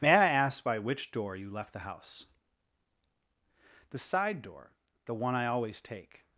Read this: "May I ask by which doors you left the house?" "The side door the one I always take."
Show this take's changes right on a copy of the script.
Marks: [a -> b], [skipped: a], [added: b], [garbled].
"May I ask by which [doors -> door] you left the house?" "The side door the one I always take."